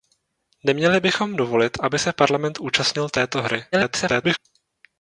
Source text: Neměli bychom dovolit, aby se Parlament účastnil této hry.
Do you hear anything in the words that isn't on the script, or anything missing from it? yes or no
yes